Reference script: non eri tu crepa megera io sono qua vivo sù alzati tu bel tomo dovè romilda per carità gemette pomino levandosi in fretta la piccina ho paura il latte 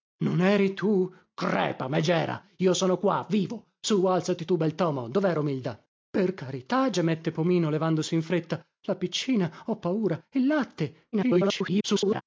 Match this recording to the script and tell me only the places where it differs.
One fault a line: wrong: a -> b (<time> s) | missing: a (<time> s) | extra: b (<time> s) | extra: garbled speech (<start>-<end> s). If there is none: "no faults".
extra: garbled speech (11.1-12.2 s)